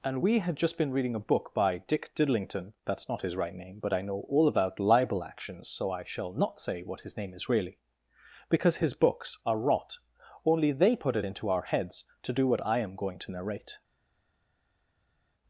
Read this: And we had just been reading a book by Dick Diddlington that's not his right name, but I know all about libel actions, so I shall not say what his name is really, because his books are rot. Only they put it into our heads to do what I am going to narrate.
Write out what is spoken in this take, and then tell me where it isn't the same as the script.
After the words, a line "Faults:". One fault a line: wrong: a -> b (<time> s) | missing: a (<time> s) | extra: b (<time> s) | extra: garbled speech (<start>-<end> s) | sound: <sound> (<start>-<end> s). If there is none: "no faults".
And we had just been reading a book by Dick Diddlington that's not his right name, but I know all about libel actions, so I shall not say what his name is really, because his books are rot. Only they put it into our heads to do what I am going to narrate.
Faults:
no faults